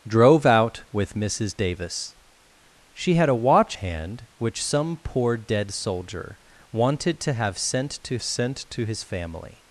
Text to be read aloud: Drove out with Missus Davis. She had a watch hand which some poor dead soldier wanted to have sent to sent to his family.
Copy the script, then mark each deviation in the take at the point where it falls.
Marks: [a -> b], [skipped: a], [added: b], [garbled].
Drove out with Missus Davis. She had a watch hand which some poor dead soldier wanted to have sent to sent to his family.